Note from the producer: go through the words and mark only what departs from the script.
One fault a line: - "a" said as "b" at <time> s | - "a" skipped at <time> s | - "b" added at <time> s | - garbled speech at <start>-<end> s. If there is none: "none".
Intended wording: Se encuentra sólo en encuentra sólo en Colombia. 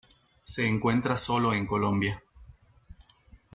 - "encuentra sólo en" skipped at 1.7 s